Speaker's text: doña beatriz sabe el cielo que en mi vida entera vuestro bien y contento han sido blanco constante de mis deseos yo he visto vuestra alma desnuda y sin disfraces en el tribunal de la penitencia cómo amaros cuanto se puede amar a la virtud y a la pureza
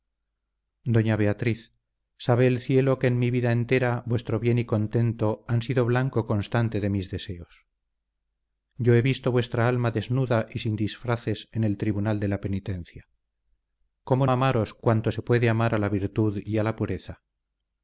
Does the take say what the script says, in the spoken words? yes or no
yes